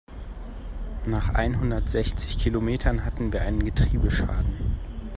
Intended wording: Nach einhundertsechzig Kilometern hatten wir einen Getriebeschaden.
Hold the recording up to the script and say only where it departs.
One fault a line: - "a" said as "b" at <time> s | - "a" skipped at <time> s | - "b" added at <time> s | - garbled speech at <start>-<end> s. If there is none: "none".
none